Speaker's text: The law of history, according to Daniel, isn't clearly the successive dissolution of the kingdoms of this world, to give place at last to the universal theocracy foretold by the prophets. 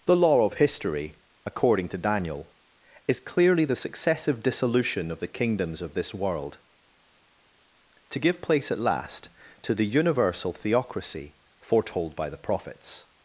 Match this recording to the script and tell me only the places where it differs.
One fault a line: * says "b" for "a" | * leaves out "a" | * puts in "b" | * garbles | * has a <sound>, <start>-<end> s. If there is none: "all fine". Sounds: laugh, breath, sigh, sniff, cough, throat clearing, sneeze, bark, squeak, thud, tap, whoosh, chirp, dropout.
* says "is" for "isn't"